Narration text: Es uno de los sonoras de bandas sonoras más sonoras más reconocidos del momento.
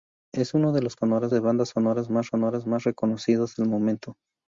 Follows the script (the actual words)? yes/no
yes